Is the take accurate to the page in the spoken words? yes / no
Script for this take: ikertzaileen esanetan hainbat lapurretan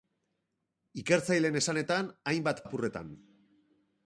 yes